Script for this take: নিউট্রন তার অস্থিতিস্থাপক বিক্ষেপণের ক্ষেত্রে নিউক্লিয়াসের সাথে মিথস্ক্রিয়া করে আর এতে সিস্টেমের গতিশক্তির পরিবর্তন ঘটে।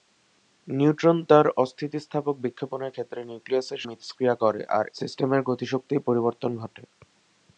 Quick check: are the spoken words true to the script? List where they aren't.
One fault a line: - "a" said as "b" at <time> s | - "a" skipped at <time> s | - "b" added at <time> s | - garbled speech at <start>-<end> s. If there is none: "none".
- "সাথে" skipped at 3.8 s
- "এতে" skipped at 4.9 s